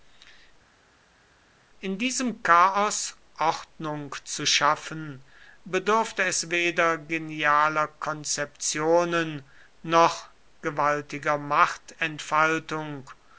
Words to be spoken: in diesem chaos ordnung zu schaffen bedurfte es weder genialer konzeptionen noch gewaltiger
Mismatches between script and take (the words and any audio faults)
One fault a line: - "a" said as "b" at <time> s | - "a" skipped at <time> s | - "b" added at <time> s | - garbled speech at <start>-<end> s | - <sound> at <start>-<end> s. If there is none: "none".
none